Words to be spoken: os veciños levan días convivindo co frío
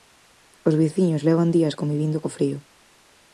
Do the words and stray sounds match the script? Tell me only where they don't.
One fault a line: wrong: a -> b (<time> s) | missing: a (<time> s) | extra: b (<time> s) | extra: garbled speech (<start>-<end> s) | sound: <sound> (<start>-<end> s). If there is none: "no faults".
no faults